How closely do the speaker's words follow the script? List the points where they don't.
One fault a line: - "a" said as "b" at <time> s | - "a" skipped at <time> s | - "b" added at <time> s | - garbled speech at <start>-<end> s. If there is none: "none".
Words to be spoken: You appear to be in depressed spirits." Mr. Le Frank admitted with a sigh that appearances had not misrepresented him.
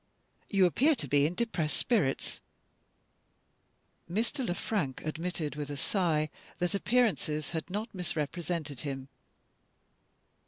none